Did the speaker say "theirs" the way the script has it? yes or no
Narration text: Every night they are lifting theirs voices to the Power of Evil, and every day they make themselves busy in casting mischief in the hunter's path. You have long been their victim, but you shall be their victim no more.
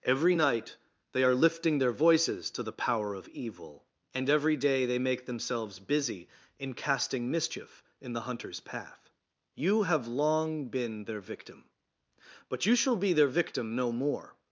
no